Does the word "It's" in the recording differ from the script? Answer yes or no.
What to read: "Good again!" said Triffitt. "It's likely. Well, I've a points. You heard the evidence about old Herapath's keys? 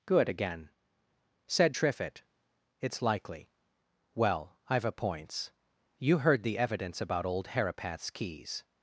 no